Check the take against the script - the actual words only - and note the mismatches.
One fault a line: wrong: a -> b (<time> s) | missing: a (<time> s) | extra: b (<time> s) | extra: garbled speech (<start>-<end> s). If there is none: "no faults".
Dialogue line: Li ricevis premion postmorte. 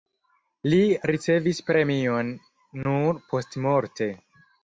extra: nur (2.8 s)